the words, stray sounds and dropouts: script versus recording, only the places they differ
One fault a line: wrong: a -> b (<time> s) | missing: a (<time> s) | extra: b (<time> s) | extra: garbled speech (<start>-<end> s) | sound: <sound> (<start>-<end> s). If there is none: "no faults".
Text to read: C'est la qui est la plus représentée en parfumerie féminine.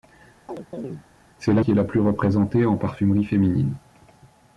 sound: chirp (0.5-1.0 s)